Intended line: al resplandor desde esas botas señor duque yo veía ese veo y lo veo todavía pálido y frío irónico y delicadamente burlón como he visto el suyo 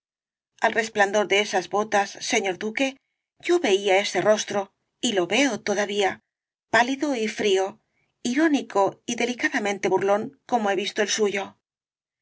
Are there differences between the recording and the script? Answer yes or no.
yes